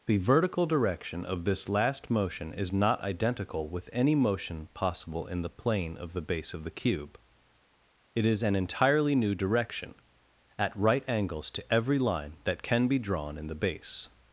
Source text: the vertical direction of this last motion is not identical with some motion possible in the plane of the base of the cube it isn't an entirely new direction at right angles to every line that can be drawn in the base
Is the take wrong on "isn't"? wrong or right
wrong